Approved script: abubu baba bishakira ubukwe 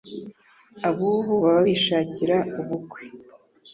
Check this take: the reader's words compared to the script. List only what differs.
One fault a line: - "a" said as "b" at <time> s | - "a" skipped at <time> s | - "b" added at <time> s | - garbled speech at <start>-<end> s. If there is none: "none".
none